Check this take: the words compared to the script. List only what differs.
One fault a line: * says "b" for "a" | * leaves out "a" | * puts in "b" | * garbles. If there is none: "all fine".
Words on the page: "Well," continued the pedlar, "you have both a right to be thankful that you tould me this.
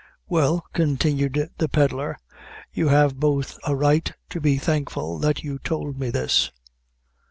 all fine